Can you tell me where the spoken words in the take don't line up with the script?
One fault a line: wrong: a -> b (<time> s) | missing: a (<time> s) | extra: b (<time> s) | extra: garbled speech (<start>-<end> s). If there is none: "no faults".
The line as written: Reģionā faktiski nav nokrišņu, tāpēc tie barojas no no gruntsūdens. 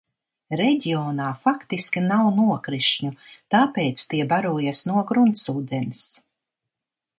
missing: no (5.0 s)